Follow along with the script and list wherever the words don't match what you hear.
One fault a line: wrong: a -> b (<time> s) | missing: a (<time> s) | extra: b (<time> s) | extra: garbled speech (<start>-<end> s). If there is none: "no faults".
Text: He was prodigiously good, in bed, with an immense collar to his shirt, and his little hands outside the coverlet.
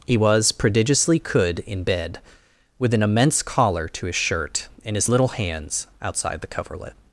wrong: good -> could (1.2 s)